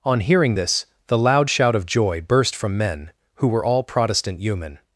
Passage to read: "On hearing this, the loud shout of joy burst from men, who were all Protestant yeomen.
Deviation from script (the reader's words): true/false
false